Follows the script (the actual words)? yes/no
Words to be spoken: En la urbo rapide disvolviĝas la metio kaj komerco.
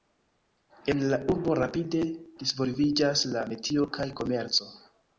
yes